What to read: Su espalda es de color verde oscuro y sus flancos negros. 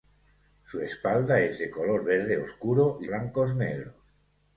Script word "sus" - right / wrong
wrong